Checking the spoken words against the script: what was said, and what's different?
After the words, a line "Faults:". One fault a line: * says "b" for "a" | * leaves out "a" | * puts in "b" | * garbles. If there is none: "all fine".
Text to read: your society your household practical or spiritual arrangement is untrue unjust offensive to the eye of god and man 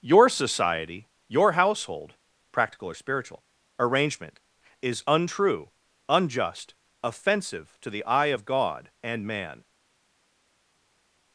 your society your household practical or spiritual arrangement is untrue unjust offensive to the eye of god and man
Faults:
all fine